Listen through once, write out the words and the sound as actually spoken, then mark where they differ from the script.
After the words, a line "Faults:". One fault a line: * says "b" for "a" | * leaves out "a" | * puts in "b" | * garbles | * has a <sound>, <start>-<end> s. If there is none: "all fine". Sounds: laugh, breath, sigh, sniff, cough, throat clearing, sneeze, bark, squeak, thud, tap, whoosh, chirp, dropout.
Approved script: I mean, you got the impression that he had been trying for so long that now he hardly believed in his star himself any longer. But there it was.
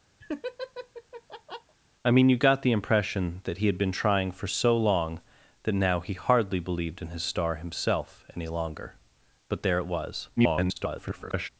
I mean, you got the impression that he had been trying for so long that now he hardly believed in his star himself any longer. But there it was. [garbled]
Faults:
* has a laugh, 0.2-1.8 s
* garbles